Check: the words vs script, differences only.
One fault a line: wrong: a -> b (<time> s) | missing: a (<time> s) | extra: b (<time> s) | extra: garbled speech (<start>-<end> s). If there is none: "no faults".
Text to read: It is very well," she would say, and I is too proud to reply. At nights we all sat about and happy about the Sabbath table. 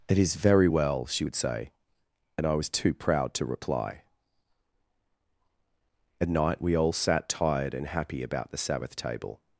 wrong: is -> was (2.5 s)
wrong: nights -> night (6.3 s)
wrong: about -> tired (7.3 s)